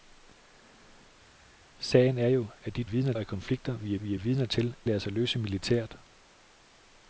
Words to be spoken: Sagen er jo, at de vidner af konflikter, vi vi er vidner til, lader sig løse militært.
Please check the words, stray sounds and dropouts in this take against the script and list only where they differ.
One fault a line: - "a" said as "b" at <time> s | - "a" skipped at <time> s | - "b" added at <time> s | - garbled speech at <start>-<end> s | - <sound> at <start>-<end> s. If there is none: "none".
none